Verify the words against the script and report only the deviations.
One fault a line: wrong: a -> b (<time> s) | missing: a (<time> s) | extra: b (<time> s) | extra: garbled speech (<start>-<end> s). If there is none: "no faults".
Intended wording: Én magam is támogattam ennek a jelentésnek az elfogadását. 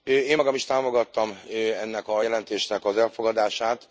no faults